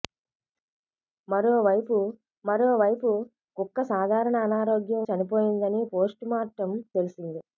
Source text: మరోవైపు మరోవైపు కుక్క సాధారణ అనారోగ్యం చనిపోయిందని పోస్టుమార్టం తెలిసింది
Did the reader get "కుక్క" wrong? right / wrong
right